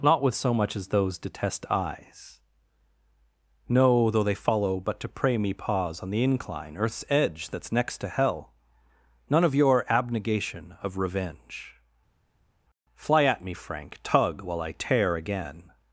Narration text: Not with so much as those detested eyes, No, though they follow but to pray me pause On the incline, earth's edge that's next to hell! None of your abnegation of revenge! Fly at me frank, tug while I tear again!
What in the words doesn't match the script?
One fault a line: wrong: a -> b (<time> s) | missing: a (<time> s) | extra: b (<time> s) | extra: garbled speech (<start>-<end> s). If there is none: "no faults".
wrong: detested -> detest (1.2 s)